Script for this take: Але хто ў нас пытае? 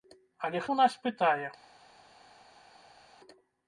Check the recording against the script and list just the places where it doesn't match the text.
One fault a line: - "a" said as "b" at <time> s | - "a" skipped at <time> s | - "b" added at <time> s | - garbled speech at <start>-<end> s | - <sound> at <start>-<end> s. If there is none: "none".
- "хто" skipped at 0.6 s